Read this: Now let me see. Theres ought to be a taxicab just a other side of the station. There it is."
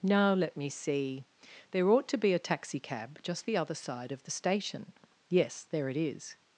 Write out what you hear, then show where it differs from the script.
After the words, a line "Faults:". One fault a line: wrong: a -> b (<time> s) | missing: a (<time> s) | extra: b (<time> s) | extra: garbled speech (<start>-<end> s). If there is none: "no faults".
Now let me see. There ought to be a taxicab just the other side of the station. Yes, there it is."
Faults:
wrong: Theres -> There (1.7 s)
wrong: a -> the (3.4 s)
extra: Yes (5.3 s)